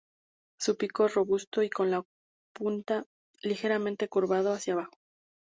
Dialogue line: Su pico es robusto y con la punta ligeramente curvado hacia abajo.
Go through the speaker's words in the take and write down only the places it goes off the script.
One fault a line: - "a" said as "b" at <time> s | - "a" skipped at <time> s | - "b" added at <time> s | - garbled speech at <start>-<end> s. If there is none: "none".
none